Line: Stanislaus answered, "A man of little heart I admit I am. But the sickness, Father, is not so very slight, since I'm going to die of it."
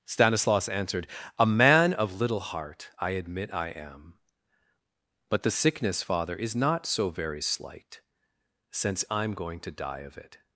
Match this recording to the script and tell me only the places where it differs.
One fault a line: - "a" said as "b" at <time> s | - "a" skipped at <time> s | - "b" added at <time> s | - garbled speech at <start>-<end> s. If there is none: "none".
none